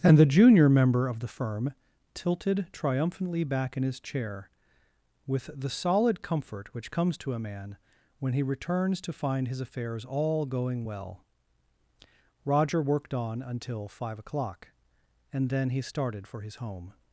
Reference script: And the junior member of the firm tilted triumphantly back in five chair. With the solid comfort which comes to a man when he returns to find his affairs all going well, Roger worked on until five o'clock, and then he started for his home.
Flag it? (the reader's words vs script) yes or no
yes